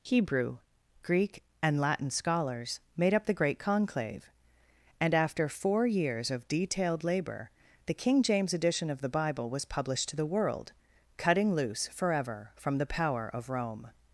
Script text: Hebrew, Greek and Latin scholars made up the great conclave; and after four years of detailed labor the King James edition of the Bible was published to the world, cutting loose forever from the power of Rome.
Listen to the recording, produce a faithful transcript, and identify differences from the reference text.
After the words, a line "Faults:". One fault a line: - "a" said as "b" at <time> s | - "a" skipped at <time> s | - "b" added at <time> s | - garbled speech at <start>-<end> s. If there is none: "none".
Hebrew, Greek and Latin scholars made up the great conclave; and after four years of detailed labor the King James edition of the Bible was published to the world, cutting loose forever from the power of Rome.
Faults:
none